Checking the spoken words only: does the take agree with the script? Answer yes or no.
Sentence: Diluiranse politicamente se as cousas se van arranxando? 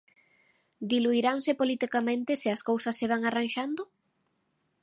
yes